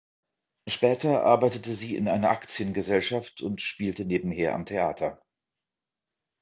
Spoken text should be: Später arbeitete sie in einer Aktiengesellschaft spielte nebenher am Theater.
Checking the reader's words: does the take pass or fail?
fail